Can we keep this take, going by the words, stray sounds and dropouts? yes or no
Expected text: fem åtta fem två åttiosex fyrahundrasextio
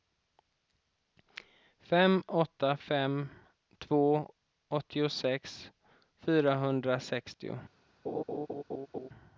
no